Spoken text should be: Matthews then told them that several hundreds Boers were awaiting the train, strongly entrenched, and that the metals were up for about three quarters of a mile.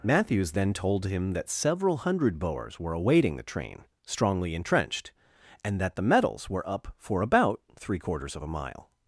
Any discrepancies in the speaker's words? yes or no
yes